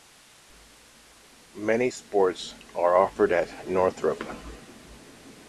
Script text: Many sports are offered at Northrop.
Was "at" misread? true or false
false